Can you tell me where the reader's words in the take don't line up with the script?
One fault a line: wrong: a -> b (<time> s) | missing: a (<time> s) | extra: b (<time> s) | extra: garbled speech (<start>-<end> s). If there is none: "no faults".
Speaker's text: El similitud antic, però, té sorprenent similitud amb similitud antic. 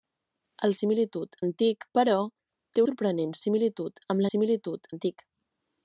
no faults